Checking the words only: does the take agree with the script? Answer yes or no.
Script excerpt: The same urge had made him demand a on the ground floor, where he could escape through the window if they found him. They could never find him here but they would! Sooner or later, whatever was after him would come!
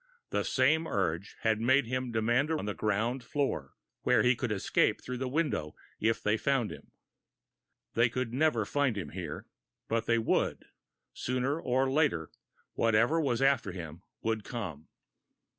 yes